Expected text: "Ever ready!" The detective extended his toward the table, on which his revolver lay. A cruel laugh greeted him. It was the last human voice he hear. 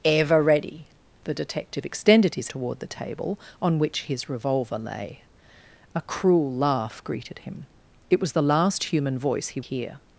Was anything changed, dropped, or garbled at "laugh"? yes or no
no